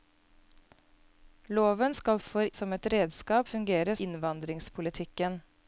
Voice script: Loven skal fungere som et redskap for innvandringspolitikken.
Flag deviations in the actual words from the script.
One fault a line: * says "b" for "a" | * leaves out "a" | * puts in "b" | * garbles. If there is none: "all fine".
* says "for" for "fungere"
* says "fungere" for "for"